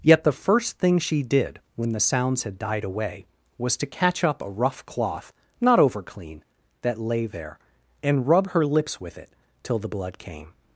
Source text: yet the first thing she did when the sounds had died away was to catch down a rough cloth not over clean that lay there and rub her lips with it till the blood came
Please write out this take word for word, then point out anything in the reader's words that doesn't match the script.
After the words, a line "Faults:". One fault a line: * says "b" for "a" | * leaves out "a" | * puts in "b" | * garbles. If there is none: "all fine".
yet the first thing she did when the sounds had died away was to catch up a rough cloth not over clean that lay there and rub her lips with it till the blood came
Faults:
* says "up" for "down"